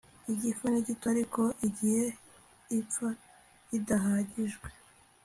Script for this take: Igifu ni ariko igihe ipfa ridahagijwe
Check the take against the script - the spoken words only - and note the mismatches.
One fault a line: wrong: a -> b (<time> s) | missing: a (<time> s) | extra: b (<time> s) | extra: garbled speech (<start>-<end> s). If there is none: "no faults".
extra: gito (0.9 s)